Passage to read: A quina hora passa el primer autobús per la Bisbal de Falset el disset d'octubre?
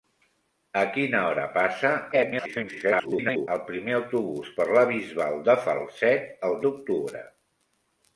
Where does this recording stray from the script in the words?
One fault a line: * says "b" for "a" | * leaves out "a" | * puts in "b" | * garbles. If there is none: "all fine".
* garbles
* leaves out "disset"